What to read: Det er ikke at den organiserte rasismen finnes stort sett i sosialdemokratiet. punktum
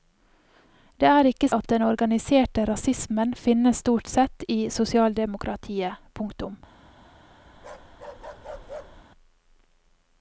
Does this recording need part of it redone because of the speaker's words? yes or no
no